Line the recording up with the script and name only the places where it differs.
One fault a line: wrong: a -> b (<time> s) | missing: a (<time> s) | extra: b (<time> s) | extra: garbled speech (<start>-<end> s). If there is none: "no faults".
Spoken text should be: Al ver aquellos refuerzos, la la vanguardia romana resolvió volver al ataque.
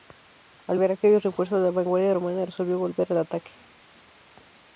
missing: la (1.7 s)